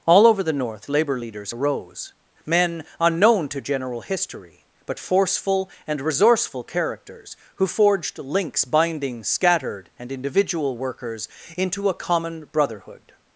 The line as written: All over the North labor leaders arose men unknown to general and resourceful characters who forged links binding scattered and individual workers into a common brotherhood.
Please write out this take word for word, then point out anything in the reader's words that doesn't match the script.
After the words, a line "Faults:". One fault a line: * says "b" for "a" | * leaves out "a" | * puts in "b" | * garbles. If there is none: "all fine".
All over the North labor leaders arose men unknown to general history but forceful and resourceful characters who forged links binding scattered and individual workers into a common brotherhood.
Faults:
* puts in "history but forceful"